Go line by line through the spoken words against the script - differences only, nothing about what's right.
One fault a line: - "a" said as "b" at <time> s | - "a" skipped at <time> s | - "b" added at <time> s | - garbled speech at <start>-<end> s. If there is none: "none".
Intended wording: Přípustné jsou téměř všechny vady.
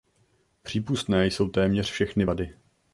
none